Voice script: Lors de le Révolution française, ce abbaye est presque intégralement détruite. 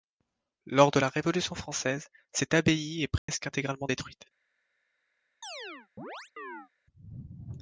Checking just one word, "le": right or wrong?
wrong